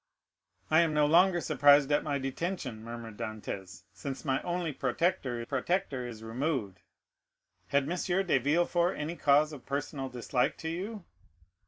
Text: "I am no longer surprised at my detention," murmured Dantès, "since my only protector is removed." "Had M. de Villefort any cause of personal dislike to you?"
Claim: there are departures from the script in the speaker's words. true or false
true